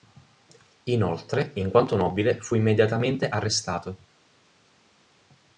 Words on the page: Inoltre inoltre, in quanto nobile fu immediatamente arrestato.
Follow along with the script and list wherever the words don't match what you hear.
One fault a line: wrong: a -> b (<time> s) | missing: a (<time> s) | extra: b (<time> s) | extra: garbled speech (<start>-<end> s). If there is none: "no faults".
missing: inoltre (1.5 s)